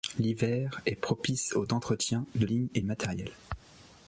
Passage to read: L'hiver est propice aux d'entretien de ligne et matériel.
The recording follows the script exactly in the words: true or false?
true